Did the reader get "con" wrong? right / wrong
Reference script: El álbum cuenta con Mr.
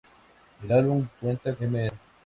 wrong